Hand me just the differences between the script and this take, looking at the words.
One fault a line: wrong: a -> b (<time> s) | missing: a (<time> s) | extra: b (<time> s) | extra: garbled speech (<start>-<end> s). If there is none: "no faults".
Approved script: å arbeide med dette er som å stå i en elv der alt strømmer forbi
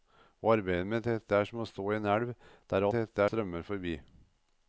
wrong: alt -> dette (2.9 s)